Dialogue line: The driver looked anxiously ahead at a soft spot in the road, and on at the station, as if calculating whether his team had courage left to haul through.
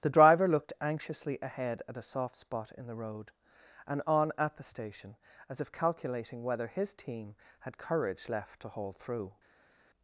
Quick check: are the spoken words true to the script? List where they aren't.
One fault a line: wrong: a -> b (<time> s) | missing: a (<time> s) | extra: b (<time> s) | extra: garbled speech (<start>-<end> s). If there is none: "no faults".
no faults